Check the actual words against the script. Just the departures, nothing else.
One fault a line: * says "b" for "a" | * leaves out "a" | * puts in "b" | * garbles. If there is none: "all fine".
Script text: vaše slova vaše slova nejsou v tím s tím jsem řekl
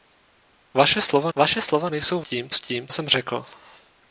all fine